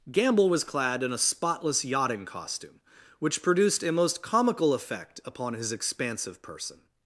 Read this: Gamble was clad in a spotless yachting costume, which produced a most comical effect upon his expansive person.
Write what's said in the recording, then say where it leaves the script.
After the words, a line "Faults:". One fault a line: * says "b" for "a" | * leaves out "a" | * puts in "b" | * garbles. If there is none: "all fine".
Gamble was clad in a spotless yachting costume, which produced a most comical effect upon his expansive person.
Faults:
all fine